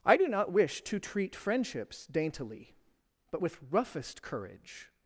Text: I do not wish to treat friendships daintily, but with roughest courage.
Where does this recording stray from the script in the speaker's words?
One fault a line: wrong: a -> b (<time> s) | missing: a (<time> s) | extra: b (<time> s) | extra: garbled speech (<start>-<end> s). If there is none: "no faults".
no faults